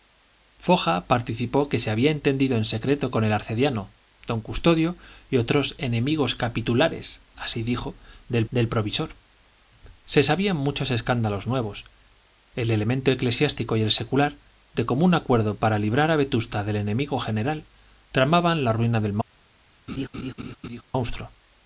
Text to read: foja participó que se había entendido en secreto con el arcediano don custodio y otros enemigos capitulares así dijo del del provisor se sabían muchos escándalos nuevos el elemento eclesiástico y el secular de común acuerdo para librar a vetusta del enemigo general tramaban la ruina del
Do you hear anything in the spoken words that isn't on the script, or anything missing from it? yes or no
no